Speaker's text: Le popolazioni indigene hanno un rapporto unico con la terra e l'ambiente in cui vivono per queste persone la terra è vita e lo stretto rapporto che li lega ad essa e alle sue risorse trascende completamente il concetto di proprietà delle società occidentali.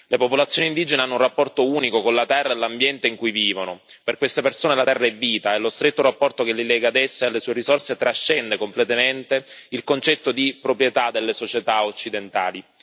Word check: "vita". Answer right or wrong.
right